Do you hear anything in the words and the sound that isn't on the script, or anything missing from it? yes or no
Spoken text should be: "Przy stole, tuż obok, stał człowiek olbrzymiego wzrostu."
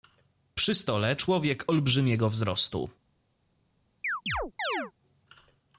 yes